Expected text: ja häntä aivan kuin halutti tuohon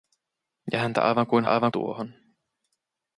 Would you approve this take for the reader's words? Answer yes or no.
no